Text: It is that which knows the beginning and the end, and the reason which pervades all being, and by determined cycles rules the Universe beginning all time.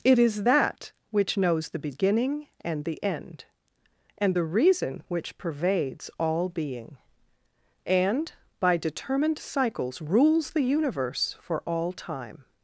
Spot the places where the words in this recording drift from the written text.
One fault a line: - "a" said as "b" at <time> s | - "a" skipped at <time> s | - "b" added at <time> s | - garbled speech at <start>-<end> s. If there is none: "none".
- "beginning" said as "for" at 11.4 s